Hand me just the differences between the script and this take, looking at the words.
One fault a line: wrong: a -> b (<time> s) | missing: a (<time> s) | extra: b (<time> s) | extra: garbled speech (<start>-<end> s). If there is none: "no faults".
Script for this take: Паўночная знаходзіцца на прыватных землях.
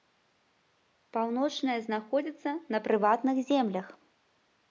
no faults